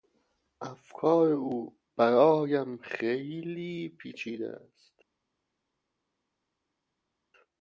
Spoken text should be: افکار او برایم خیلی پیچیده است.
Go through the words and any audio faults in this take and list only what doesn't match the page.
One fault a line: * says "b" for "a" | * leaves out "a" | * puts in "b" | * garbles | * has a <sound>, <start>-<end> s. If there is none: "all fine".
all fine